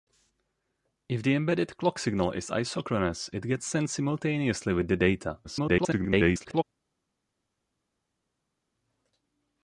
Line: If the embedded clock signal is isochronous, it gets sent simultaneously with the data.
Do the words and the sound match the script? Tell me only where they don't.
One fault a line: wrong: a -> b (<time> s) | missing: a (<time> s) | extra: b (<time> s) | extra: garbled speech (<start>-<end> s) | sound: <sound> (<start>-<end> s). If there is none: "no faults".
extra: garbled speech (5.4-6.6 s)